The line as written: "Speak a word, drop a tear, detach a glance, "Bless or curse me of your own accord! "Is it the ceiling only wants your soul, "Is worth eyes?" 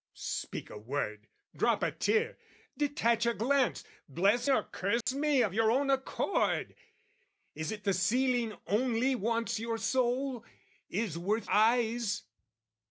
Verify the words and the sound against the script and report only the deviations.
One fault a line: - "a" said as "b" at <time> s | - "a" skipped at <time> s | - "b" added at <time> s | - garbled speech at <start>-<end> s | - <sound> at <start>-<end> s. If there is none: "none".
- dropout at 5.0-5.1 s